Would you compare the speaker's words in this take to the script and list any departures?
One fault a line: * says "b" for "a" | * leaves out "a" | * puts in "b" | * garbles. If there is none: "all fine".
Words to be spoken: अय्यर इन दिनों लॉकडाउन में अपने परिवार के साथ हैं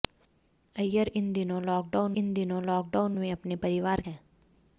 * puts in "इन दिनों लॉकडाउन"
* leaves out "के साथ"